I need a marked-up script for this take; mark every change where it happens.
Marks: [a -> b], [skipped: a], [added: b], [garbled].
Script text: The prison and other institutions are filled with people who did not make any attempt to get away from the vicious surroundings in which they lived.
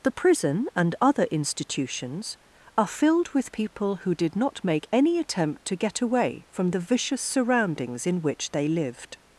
The prison and other institutions are filled with people who did not make any attempt to get away from the vicious surroundings in which they lived.